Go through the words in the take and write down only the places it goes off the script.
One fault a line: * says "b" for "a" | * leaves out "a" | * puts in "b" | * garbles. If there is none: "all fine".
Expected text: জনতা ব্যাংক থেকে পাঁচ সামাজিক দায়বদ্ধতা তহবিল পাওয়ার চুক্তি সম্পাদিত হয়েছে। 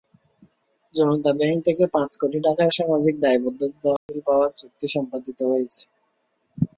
* puts in "কোটি টাকার"